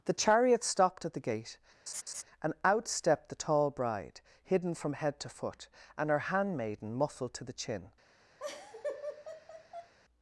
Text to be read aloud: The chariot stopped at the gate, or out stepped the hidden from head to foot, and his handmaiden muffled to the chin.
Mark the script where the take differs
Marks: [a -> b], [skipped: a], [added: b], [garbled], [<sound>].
The chariot stopped at the gate, [laugh] [or -> and] out stepped the [added: tall bride] hidden from head to foot, and [his -> her] handmaiden muffled to the chin. [laugh]